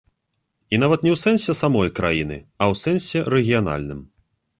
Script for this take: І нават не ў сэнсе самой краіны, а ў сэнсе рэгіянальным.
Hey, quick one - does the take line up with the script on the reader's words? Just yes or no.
yes